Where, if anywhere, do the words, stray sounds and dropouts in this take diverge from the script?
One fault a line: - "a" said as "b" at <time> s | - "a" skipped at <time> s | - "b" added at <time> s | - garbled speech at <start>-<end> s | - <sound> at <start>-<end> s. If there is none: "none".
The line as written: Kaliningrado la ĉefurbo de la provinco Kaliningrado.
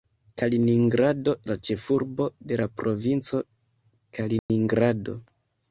- dropout at 4.4-4.5 s